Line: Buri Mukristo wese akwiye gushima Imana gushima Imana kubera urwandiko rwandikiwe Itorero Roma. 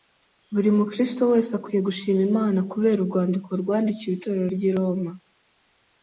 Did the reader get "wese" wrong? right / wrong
right